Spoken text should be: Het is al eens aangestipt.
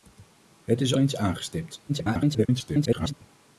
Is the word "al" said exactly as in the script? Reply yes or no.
no